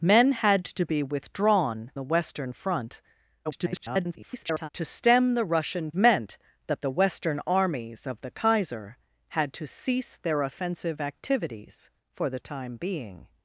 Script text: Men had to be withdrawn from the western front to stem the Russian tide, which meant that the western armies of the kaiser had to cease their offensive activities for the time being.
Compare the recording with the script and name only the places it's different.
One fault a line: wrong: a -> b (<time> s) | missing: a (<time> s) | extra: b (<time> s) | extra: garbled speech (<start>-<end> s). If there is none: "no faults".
missing: from (1.9 s)
extra: garbled speech (3.4-4.7 s)
missing: tide which (5.9 s)